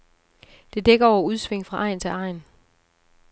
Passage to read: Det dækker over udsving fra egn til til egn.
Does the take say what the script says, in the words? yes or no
no